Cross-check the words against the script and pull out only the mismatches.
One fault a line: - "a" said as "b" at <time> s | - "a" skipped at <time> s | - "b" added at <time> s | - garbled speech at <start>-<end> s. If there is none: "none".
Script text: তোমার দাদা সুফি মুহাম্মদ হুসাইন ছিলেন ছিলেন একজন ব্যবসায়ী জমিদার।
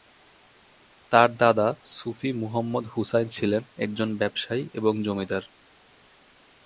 - "তোমার" said as "তার" at 1.1 s
- "ছিলেন" skipped at 3.6 s
- "এবং" added at 4.7 s